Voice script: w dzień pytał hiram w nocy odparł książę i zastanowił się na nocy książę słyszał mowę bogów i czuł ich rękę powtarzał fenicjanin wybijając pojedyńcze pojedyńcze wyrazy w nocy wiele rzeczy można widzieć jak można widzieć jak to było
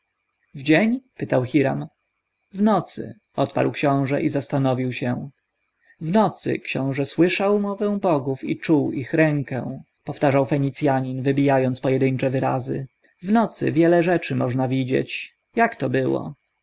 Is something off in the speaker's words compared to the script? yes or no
yes